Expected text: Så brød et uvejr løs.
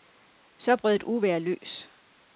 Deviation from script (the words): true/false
false